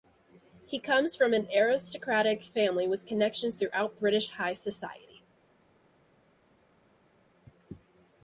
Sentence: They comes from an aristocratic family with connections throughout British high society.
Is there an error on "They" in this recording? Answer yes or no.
yes